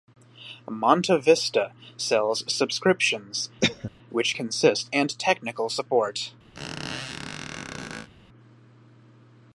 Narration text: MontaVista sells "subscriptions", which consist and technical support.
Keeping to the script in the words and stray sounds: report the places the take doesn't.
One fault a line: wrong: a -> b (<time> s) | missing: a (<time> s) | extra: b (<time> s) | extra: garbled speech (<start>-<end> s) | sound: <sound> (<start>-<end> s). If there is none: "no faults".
sound: cough (3.6-3.9 s)
sound: squeak (6.5-8.1 s)